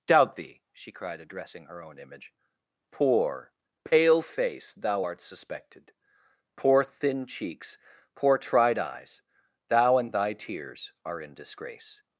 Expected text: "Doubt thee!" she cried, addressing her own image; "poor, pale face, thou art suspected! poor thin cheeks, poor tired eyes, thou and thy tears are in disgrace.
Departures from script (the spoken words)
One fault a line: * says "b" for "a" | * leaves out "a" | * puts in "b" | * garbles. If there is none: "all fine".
* says "tried" for "tired"